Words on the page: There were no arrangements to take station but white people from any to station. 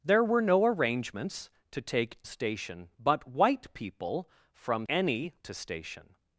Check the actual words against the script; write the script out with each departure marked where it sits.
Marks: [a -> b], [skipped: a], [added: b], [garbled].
There were no arrangements to take station but white people from any to station.